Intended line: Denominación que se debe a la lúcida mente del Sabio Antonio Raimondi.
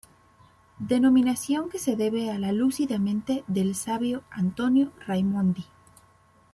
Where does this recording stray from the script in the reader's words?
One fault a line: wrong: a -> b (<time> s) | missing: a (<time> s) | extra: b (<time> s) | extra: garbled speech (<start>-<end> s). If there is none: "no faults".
no faults